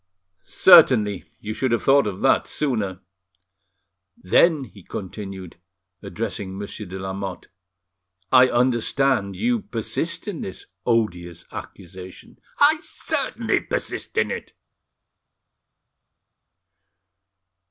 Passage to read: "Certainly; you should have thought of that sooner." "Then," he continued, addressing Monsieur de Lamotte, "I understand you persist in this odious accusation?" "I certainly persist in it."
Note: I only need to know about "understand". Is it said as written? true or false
true